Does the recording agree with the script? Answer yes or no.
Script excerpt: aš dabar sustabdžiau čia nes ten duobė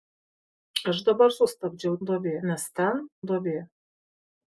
no